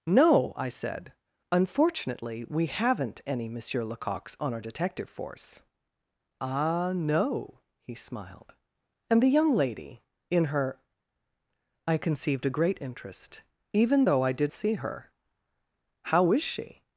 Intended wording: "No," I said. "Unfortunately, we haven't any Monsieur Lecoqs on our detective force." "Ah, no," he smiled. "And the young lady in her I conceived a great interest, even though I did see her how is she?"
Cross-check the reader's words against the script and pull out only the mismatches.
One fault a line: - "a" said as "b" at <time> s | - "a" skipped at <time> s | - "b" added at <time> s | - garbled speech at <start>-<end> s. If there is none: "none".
none